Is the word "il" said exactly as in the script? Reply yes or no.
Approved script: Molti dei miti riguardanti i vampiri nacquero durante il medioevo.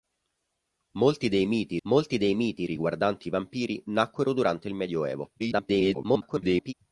yes